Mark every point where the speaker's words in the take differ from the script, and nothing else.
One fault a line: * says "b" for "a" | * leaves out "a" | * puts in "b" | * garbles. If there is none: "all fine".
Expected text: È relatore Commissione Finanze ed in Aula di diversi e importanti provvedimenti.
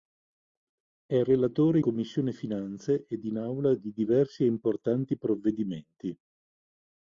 all fine